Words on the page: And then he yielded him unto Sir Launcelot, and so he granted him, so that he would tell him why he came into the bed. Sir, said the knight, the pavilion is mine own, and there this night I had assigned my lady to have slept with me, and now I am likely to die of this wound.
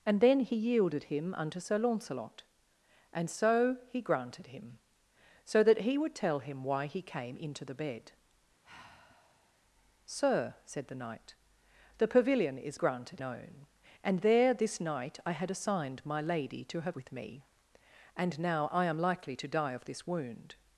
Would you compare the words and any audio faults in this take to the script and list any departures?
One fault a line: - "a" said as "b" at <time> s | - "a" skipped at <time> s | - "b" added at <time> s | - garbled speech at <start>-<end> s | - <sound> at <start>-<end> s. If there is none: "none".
- sigh at 8.6-9.6 s
- "mine" said as "granted" at 12.7 s
- "slept" skipped at 17.0 s